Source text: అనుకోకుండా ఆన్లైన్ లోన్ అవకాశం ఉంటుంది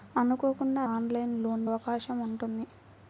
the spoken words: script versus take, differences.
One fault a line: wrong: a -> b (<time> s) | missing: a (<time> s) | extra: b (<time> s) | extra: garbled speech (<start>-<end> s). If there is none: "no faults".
no faults